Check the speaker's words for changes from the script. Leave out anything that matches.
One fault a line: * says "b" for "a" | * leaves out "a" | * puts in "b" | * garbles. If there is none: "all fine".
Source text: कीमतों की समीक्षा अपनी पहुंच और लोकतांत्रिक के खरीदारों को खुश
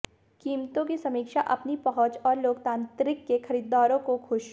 all fine